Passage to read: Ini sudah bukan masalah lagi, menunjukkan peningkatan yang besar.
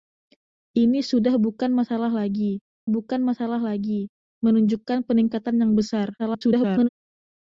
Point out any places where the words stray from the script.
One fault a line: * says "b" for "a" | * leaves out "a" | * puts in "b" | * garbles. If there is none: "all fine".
* puts in "bukan masalah lagi"
* garbles